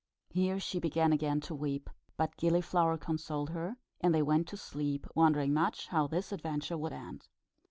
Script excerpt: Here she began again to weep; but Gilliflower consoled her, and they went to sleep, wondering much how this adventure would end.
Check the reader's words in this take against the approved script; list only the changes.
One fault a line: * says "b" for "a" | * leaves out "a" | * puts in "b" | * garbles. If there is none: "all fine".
all fine